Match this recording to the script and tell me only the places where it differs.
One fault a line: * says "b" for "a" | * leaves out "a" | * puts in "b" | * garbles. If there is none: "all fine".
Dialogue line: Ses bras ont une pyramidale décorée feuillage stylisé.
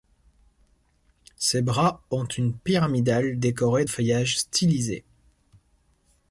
all fine